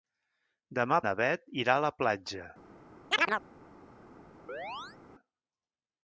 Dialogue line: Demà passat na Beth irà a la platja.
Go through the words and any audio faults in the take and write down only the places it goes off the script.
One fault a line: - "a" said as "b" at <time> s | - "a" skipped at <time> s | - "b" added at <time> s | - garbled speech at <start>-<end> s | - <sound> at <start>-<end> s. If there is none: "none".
- "passat" skipped at 1.0 s
- chirp at 3.1-3.4 s
- chirp at 4.5-5.0 s